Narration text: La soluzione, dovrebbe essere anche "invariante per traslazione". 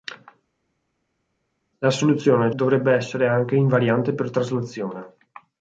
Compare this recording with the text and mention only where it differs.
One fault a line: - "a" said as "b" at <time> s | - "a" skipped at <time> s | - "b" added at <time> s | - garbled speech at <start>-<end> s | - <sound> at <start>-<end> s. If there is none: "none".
none